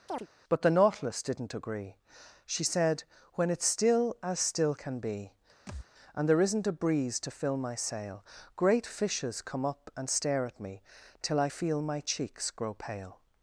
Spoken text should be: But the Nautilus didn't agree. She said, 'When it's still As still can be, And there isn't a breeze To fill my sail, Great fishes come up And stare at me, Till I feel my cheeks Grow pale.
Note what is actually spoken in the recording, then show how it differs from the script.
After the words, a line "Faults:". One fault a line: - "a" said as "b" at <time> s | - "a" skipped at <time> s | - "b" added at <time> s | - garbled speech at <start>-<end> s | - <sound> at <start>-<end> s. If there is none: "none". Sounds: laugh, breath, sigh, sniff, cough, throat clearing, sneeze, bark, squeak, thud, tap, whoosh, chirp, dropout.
But the Nautilus didn't agree. She said, 'When it's still As still can be, And there isn't a breeze To fill my sail, Great fishes come up And stare at me, Till I feel my cheeks Grow pale.
Faults:
- chirp at 0.1-0.3 s
- thud at 5.7-5.9 s